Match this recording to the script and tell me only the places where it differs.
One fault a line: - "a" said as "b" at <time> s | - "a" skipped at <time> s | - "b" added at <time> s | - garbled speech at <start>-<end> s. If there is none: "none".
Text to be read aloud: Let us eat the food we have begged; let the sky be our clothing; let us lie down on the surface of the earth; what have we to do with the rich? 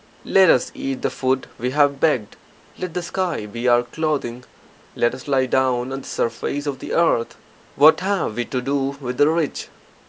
none